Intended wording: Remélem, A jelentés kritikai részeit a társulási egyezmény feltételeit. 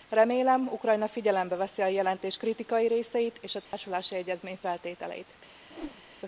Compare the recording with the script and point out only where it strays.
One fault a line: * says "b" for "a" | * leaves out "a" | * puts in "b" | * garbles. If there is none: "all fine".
* puts in "Ukrajna figyelembe veszi"
* puts in "és"